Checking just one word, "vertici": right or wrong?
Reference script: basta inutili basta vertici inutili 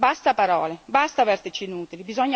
right